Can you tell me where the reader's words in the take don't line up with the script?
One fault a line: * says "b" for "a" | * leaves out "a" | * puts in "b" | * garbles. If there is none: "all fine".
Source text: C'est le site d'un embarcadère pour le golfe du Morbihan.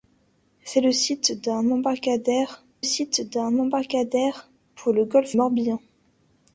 * puts in "site d'un embarcadère"
* leaves out "du"